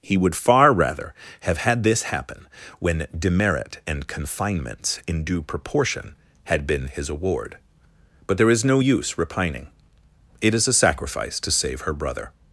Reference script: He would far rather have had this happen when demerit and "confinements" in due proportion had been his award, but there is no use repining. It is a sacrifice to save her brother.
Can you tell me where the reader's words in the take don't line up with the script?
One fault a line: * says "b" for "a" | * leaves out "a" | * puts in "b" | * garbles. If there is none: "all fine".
all fine